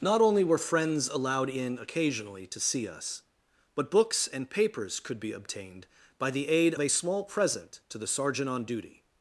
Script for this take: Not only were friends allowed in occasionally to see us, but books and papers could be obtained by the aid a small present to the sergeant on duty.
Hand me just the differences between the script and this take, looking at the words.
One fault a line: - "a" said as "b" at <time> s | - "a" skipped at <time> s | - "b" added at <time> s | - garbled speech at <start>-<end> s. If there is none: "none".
none